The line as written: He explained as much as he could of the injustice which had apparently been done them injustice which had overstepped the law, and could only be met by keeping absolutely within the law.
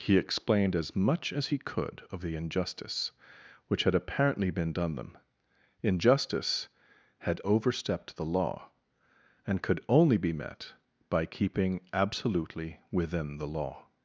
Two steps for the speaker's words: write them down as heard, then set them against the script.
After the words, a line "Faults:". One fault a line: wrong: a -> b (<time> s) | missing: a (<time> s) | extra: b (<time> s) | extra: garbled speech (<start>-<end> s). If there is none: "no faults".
He explained as much as he could of the injustice which had apparently been done them injustice had overstepped the law, and could only be met by keeping absolutely within the law.
Faults:
missing: which (6.7 s)